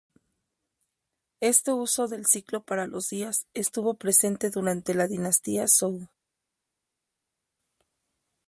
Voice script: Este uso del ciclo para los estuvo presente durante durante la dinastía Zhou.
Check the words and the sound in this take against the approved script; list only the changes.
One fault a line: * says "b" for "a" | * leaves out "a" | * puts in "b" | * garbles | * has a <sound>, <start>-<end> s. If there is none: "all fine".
* puts in "días"
* leaves out "durante"